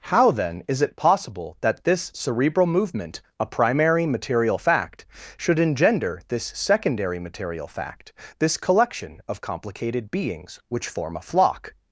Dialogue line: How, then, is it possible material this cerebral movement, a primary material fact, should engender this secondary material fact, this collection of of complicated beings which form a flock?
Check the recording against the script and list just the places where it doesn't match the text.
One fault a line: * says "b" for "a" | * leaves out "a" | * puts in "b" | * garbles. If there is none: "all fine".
* says "that" for "material"
* leaves out "of"